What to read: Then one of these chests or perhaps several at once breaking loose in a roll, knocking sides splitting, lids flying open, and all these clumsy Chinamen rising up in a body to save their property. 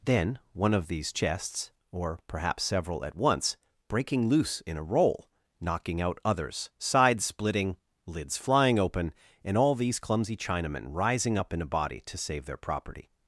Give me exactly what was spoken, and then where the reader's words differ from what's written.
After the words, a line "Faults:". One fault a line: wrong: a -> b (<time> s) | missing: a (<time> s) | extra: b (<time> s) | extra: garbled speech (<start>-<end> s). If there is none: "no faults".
Then one of these chests or perhaps several at once breaking loose in a roll, knocking out others, sides splitting, lids flying open, and all these clumsy Chinamen rising up in a body to save their property.
Faults:
extra: out others (6.0 s)